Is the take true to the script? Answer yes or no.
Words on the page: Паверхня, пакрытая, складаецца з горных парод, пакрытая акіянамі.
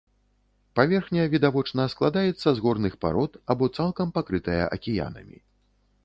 no